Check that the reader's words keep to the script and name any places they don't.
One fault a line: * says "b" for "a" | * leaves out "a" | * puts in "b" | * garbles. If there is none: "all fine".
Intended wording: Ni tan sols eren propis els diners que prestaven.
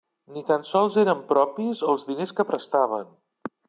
all fine